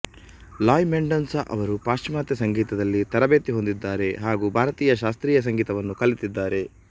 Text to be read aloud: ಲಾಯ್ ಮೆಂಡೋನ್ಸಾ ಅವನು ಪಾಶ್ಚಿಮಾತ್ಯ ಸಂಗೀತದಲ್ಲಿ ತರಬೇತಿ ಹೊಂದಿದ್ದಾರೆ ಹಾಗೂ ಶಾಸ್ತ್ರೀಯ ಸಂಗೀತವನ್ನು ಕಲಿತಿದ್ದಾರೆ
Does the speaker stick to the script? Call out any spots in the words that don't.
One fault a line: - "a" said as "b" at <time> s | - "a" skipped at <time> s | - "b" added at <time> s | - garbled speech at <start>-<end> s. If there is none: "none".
- "ಅವನು" said as "ಅವರು" at 1.5 s
- "ಭಾರತೀಯ" added at 4.6 s